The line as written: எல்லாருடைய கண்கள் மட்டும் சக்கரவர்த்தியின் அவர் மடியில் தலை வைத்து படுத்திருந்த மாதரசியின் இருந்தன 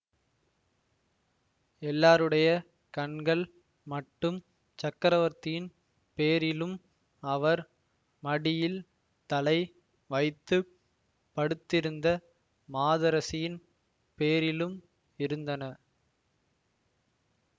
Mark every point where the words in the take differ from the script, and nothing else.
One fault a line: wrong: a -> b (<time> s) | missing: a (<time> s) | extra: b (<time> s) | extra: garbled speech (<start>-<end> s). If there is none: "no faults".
extra: பேரிலும் (6.2 s)
extra: பேரிலும் (14.2 s)